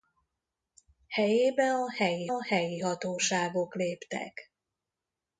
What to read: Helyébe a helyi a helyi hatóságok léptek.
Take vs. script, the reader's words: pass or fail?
pass